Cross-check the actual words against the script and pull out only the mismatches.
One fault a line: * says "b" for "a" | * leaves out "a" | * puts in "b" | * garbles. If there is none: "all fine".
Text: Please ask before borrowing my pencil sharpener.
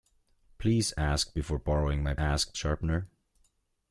* says "ask" for "pencil"